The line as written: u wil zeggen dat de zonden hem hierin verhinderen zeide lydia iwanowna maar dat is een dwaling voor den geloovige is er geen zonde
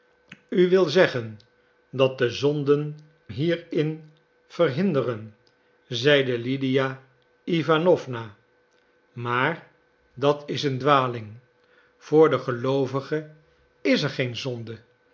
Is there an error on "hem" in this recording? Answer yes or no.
yes